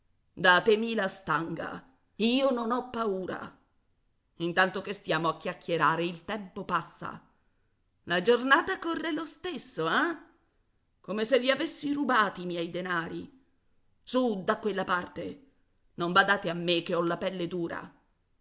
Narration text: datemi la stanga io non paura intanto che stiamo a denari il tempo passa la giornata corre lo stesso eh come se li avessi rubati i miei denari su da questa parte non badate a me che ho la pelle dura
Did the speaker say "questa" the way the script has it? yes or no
no